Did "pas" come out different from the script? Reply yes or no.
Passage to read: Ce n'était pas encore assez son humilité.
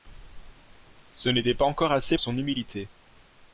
no